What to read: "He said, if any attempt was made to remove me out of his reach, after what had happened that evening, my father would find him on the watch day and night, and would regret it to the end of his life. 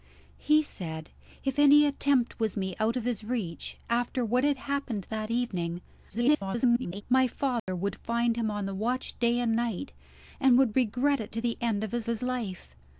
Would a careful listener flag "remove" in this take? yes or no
yes